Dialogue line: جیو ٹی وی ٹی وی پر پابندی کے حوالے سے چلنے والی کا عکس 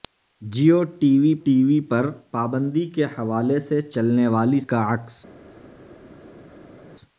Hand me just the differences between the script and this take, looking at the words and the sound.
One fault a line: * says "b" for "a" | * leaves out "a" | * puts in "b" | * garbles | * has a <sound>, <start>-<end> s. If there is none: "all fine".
all fine